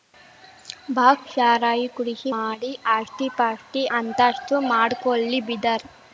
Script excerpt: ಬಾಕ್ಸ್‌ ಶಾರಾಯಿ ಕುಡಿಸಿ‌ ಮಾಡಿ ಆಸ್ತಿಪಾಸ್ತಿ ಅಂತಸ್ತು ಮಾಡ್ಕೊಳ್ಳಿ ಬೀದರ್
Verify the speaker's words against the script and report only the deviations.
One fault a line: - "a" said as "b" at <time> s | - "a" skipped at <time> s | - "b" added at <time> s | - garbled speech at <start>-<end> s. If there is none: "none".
none